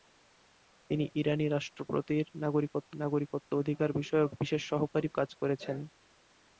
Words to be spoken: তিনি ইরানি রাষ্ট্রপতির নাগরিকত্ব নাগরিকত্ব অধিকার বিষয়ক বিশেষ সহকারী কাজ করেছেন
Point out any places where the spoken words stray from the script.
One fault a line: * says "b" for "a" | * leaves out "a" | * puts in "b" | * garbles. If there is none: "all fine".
all fine